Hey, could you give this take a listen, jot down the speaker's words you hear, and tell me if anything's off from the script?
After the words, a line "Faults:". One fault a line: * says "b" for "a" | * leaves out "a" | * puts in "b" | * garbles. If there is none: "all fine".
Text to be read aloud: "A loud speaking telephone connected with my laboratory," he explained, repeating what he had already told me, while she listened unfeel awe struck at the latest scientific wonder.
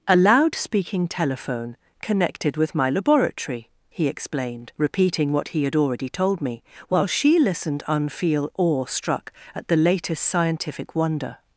"A loud speaking telephone connected with my laboratory," he explained, repeating what he had already told me, while she listened unfeel awe struck at the latest scientific wonder.
Faults:
all fine